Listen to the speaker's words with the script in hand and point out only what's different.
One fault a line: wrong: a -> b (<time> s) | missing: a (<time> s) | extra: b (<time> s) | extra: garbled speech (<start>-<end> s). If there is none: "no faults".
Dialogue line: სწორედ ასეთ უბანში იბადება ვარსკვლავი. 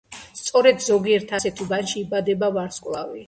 extra: ზოგიერთ (0.8 s)